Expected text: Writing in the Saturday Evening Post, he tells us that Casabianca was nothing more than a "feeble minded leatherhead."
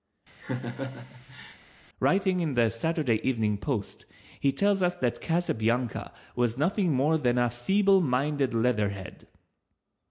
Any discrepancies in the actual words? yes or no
no